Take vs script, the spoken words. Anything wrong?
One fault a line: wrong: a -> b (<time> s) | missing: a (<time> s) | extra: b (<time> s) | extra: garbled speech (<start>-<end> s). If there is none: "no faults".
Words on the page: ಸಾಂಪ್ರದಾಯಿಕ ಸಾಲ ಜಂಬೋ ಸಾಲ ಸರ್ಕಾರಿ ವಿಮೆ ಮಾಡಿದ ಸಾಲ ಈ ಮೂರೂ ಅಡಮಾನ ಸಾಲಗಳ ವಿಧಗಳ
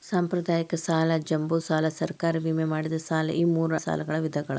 missing: ಅಡಮಾನ (3.7 s)